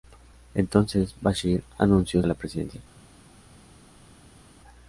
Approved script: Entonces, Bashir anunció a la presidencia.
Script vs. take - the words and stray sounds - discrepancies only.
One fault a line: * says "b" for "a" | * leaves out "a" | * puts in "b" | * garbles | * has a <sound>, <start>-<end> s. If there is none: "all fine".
all fine